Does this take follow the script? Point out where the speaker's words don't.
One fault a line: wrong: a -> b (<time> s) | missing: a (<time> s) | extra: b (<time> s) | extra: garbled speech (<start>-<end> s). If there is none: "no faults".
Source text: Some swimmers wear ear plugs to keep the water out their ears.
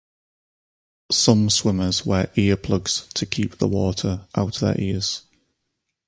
no faults